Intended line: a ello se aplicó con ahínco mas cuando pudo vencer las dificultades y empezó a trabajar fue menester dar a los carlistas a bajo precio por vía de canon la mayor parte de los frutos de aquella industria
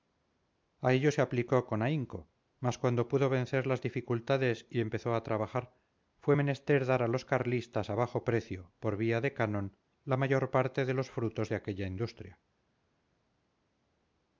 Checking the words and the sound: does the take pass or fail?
pass